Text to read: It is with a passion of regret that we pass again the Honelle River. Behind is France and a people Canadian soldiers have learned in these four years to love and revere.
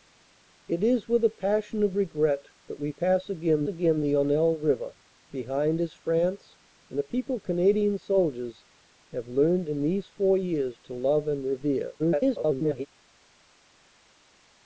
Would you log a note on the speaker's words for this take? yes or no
yes